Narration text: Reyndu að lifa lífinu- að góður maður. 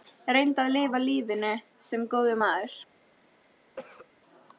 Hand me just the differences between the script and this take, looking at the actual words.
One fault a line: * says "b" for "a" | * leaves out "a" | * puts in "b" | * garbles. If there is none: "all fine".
* says "sem" for "að"